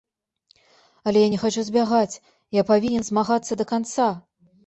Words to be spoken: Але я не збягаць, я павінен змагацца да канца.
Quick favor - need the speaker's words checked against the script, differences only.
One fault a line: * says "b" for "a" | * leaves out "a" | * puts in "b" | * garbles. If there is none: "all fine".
* puts in "хачу"